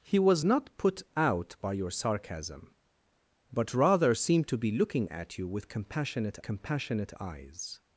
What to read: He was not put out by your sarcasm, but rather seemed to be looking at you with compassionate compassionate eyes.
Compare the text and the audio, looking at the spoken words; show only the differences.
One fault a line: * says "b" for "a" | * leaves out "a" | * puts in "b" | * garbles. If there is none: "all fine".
all fine